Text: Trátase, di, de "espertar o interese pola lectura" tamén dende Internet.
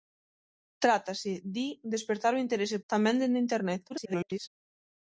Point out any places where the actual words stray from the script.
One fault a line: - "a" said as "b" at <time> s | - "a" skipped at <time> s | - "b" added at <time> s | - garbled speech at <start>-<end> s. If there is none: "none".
- "pola lectura" skipped at 2.8 s
- garbled speech at 3.9-4.5 s